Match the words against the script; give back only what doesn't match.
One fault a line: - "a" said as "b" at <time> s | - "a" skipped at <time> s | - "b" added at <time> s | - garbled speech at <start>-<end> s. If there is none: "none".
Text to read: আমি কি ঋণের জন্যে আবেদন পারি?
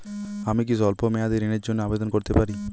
- "স্বল্প মেয়াদি" added at 0.8 s
- "করতে" added at 2.1 s